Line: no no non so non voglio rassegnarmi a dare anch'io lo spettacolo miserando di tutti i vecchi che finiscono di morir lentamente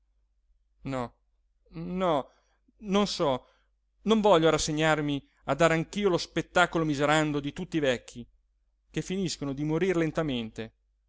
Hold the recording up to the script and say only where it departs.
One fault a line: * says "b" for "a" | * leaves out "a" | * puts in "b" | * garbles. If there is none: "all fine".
all fine